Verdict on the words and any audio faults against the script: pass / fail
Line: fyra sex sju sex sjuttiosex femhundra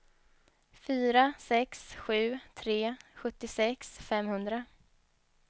fail